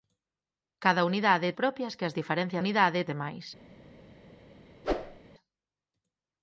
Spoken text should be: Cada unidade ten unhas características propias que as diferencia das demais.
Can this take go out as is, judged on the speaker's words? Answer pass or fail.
fail